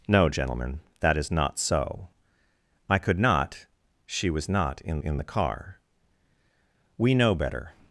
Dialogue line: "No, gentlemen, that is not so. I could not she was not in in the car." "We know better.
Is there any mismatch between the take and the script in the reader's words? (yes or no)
no